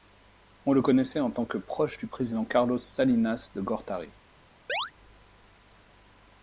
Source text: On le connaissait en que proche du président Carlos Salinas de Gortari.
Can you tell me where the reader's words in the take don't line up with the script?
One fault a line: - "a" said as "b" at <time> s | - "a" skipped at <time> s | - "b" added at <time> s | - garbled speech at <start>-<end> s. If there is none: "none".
- "tant" added at 1.3 s